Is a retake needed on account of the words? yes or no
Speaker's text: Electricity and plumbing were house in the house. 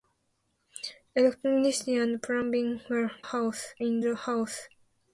no